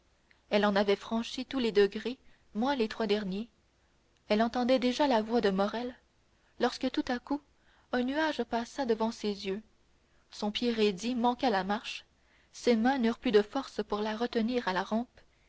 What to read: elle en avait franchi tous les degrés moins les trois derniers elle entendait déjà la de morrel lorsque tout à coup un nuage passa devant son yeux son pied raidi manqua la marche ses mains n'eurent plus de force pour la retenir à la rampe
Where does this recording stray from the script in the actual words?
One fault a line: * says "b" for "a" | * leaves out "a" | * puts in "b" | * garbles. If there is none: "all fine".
* puts in "voix"
* says "ses" for "son"